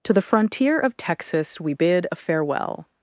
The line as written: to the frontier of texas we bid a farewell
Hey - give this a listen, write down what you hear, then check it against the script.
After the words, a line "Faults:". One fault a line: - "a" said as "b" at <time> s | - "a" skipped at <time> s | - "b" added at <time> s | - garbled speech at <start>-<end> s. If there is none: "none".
to the frontier of texas we bid a farewell
Faults:
none